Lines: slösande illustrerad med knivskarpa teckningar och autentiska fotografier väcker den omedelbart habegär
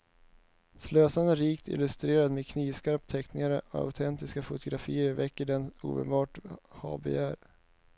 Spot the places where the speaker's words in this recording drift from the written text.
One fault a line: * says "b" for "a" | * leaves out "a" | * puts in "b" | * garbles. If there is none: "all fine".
* puts in "rikt"